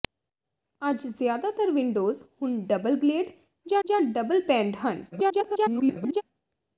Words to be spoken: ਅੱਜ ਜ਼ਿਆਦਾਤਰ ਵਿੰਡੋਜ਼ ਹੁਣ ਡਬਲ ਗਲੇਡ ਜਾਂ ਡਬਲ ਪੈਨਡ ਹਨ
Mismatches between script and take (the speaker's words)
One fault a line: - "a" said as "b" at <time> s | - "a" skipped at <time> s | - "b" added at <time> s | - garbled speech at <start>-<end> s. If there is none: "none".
- "ਜਾਂ" added at 3.8 s
- garbled speech at 5.1-6.2 s